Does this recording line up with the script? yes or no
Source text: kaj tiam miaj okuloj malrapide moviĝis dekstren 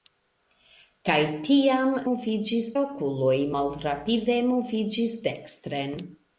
no